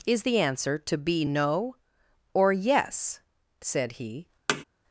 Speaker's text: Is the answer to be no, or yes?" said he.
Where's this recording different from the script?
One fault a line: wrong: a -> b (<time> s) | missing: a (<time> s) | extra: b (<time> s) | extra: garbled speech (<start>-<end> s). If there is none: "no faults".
no faults